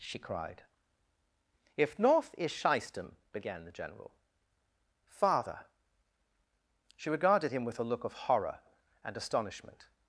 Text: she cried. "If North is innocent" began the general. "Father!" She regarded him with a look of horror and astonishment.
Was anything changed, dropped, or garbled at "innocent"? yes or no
yes